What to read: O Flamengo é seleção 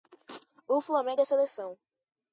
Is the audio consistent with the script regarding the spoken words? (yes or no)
yes